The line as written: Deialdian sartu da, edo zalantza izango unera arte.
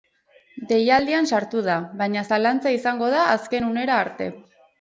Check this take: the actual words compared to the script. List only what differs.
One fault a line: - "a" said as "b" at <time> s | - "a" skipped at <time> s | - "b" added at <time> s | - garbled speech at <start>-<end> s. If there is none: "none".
- "edo" said as "baina" at 2.0 s
- "da azken" added at 3.2 s